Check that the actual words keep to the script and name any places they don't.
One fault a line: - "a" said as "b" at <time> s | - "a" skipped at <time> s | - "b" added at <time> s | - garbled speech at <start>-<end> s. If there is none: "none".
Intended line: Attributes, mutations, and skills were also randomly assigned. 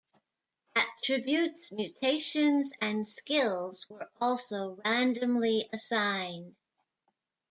none